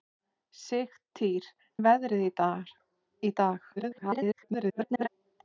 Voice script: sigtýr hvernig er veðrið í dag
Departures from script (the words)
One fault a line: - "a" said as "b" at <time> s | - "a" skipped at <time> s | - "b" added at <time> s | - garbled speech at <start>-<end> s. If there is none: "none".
- "hvernig" skipped at 1.5 s
- garbled speech at 3.8-5.1 s